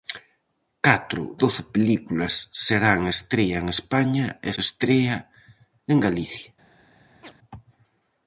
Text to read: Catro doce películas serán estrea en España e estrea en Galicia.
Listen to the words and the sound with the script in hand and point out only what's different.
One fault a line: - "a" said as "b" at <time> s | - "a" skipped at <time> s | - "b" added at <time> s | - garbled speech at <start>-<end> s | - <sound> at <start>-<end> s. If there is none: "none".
- chirp at 7.2-7.3 s